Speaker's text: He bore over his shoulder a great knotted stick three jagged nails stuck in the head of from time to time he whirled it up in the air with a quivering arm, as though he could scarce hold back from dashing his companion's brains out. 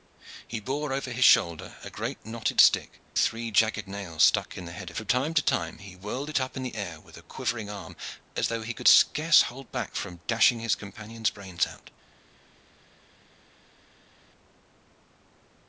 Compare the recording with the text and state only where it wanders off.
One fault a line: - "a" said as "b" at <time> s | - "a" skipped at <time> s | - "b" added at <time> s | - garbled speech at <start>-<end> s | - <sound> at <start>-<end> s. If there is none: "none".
none